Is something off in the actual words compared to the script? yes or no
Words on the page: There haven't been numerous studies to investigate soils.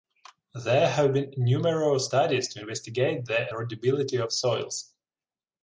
yes